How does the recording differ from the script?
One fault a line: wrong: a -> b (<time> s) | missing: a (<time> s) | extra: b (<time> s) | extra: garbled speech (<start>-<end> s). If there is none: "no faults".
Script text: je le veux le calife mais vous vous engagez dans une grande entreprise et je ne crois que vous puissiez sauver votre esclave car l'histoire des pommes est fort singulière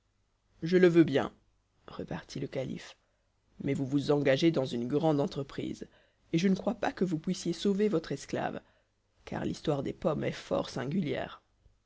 extra: bien repartit (1.0 s)
extra: pas (6.8 s)